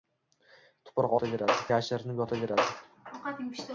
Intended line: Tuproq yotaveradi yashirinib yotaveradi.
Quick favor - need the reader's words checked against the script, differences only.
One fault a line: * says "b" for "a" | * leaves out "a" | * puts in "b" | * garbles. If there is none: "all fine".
all fine